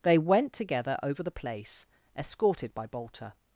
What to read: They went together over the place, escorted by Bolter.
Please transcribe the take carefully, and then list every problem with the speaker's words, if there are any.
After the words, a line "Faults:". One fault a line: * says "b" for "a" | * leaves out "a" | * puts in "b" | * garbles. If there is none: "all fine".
They went together over the place, escorted by Bolter.
Faults:
all fine